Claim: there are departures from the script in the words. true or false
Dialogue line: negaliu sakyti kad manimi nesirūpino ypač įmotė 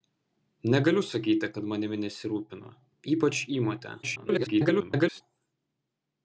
true